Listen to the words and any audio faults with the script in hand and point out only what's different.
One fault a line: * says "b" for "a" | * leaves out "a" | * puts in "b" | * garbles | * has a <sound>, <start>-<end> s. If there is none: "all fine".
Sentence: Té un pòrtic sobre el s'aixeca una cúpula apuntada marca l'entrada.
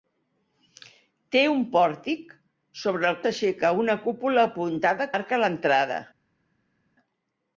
all fine